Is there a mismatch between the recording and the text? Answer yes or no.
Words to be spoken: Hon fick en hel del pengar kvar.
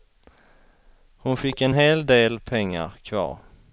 no